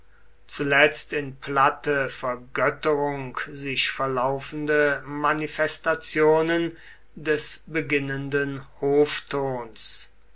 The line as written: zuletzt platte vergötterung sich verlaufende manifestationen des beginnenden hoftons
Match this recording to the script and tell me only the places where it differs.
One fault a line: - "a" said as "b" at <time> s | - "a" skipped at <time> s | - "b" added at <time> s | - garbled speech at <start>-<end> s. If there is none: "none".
- "in" added at 1.1 s